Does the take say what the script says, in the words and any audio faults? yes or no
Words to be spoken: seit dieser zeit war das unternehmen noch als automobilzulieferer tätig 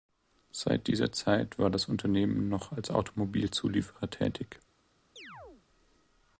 no